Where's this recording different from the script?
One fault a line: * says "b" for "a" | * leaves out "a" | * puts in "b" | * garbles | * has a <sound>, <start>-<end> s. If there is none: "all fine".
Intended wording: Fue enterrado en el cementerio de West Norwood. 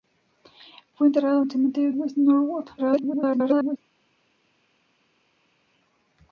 * leaves out "en"
* leaves out "de"
* garbles